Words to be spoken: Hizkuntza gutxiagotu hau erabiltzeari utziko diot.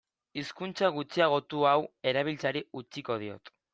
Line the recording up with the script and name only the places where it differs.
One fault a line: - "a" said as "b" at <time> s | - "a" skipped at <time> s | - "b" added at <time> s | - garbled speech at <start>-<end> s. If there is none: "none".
none